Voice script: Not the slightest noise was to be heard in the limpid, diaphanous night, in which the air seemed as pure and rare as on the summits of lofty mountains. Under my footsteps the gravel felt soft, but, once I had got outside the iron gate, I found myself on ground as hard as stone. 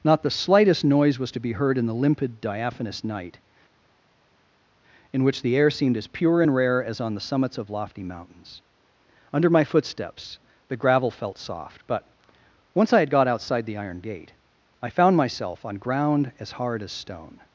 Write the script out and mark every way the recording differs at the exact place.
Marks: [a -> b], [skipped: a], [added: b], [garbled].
Not the slightest noise was to be heard in the limpid, diaphanous night, in which the air seemed as pure and rare as on the summits of lofty mountains. Under my footsteps the gravel felt soft, but, once I had got outside the iron gate, I found myself on ground as hard as stone.